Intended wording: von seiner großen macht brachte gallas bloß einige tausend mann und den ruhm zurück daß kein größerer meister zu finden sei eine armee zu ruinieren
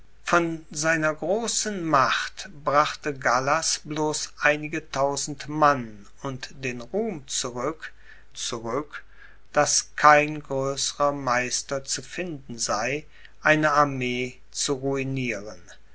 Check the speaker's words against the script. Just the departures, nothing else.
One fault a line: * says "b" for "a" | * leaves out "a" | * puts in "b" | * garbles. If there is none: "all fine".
* puts in "zurück"